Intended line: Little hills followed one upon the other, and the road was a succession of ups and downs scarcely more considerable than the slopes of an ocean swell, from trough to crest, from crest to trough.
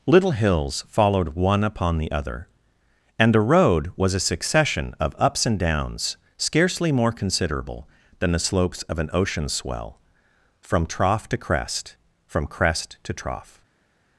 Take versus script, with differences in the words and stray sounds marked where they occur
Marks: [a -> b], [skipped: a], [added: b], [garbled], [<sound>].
Little hills followed one upon the other, and the road was a succession of ups and downs scarcely more considerable than the slopes of an ocean swell, from trough to crest, from crest to trough.